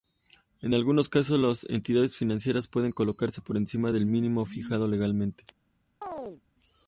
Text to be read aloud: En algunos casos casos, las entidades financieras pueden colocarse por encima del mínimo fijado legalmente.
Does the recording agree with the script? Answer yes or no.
no